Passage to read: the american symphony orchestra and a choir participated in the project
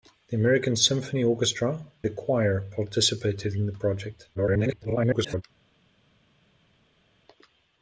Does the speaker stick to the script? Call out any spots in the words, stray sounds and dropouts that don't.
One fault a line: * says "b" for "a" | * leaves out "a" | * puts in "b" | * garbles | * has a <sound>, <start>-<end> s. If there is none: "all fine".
* leaves out "and"
* garbles